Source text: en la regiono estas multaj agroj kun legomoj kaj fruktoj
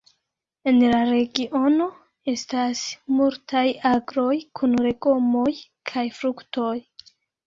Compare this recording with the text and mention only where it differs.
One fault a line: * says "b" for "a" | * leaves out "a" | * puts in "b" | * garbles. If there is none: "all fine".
all fine